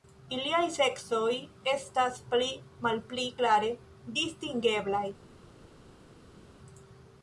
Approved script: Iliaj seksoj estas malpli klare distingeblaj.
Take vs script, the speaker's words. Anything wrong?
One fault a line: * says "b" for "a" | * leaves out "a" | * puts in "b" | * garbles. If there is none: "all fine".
* puts in "pli"